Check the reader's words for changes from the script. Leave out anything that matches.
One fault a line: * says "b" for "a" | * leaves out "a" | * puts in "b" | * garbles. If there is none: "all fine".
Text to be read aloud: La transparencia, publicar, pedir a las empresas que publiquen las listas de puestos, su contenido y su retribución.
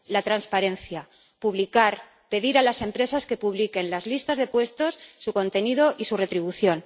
all fine